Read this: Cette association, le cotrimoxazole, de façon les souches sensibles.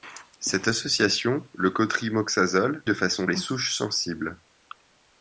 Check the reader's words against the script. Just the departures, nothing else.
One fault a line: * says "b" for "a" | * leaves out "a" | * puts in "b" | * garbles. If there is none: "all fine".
all fine